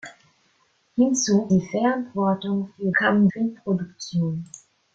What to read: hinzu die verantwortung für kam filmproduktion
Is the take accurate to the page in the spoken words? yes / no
yes